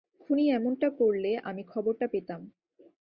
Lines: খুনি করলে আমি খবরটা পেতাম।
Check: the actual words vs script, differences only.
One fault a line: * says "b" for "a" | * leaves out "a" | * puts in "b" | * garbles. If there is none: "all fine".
* puts in "এমনটা"